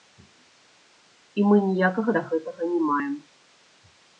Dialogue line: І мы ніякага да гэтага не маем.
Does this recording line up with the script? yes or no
yes